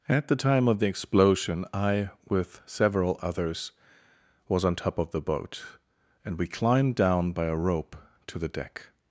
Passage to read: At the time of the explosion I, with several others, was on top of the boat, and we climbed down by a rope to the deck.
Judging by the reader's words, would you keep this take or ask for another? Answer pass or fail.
pass